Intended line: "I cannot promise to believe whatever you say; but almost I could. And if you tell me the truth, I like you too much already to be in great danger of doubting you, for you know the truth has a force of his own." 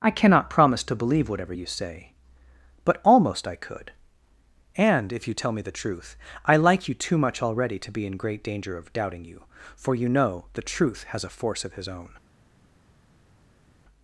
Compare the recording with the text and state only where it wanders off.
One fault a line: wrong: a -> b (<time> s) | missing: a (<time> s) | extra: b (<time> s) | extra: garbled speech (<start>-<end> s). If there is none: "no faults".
no faults